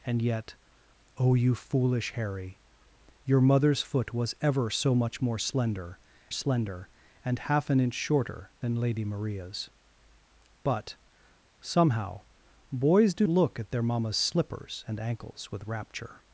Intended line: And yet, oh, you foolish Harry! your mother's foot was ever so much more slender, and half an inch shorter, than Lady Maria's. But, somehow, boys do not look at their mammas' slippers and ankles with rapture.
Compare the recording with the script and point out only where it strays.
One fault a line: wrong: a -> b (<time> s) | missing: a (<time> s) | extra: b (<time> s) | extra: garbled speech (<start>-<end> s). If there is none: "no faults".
extra: slender (6.3 s)
missing: not (13.3 s)